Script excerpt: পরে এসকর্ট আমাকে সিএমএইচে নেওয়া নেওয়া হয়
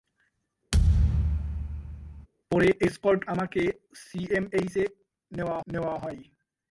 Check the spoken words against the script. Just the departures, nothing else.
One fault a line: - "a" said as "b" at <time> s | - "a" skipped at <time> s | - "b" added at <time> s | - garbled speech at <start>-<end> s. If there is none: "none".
none